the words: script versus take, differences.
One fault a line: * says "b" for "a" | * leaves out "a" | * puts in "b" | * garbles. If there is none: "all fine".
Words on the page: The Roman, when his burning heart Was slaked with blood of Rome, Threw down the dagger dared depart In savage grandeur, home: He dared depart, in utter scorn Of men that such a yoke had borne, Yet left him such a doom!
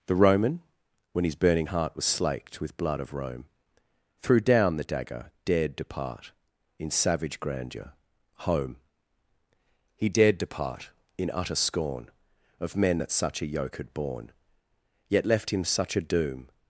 all fine